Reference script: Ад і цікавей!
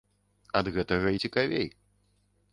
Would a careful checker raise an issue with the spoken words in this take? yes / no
yes